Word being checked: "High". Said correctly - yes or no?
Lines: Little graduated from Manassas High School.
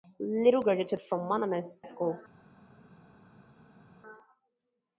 no